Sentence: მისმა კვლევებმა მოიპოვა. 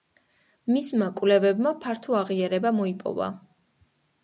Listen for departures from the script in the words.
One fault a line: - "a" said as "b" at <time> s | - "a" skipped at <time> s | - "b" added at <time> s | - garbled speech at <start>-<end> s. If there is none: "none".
- "ფართო აღიარება" added at 1.9 s